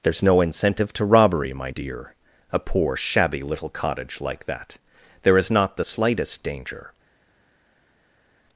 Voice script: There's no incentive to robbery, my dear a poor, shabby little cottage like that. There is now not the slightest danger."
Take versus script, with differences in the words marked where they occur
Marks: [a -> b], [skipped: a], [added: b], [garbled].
There's no incentive to robbery, my dear a poor, shabby little cottage like that. There is [skipped: now] not the slightest danger."